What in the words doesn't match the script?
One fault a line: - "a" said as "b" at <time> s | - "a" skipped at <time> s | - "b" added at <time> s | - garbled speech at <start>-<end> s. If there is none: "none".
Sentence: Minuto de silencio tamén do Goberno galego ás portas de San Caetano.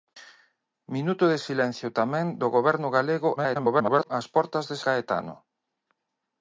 - garbled speech at 3.4-4.1 s
- "San" skipped at 4.8 s